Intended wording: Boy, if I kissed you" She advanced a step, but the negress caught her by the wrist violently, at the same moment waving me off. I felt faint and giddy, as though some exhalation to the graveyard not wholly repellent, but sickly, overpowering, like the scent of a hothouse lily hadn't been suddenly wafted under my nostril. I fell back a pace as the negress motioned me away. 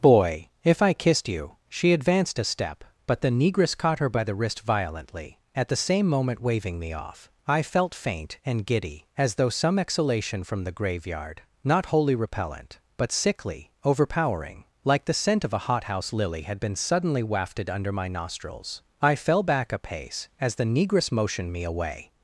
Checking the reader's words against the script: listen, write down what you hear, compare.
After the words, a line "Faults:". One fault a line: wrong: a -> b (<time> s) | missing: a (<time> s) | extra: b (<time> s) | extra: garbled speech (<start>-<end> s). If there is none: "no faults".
Boy, if I kissed you" She advanced a step, but the negress caught her by the wrist violently, at the same moment waving me off. I felt faint and giddy, as though some exhalation from the graveyard not wholly repellent, but sickly, overpowering, like the scent of a hothouse lily had been suddenly wafted under my nostrils. I fell back a pace as the negress motioned me away.
Faults:
wrong: to -> from (10.4 s)
wrong: hadn't -> had (16.4 s)
wrong: nostril -> nostrils (18.1 s)